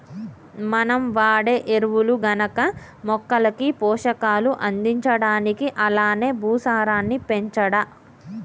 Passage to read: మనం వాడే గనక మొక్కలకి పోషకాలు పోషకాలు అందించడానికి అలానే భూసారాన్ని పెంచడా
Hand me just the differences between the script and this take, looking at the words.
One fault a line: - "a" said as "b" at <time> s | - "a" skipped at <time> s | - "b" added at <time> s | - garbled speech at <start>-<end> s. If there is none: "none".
- "ఎరువులు" added at 1.7 s
- "పోషకాలు" skipped at 4.5 s